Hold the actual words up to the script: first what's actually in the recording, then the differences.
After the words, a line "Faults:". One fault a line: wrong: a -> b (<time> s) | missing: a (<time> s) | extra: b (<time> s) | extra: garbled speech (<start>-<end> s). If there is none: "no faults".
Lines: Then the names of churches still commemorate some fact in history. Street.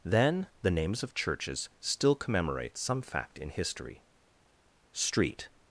Then the names of churches still commemorate some fact in history. Street.
Faults:
no faults